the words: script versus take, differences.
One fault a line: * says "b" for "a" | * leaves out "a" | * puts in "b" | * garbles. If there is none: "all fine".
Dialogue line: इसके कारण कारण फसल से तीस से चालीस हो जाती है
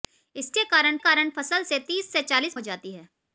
all fine